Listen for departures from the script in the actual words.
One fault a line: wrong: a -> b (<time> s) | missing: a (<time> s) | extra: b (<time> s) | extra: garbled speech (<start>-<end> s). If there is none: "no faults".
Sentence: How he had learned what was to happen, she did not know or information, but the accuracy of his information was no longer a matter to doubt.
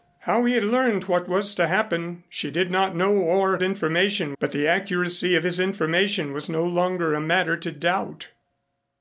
no faults